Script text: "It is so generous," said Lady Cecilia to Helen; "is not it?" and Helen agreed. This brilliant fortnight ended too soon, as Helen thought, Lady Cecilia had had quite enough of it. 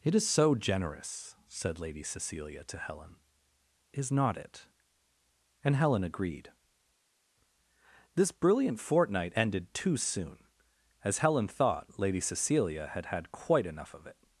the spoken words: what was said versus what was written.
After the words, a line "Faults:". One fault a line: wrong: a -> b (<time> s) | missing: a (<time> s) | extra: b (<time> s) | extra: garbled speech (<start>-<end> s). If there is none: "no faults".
"It is so generous," said Lady Cecilia to Helen; "is not it?" and Helen agreed. This brilliant fortnight ended too soon, as Helen thought, Lady Cecilia had had quite enough of it.
Faults:
no faults